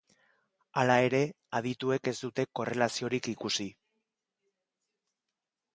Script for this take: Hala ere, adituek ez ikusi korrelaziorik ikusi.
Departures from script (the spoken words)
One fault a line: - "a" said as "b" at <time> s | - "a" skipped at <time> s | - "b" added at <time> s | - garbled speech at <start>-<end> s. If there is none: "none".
- "ikusi" said as "dute" at 2.2 s